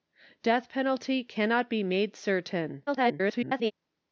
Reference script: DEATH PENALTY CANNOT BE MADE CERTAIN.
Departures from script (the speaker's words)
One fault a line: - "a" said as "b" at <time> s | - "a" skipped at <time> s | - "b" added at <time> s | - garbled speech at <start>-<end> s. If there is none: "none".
- garbled speech at 2.9-3.7 s